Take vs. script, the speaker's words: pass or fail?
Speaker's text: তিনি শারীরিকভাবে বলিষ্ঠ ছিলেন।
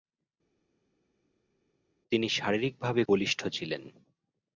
pass